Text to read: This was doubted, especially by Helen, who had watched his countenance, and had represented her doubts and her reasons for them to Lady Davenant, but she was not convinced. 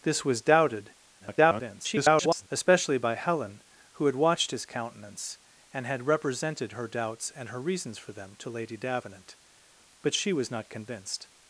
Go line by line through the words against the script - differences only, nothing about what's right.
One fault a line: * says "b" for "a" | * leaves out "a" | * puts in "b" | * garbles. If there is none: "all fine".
* garbles